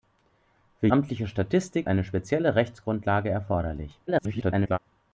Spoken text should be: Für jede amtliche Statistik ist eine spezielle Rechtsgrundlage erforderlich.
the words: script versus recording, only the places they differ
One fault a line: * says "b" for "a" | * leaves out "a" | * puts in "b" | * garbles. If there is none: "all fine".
* leaves out "jede"
* leaves out "ist"
* garbles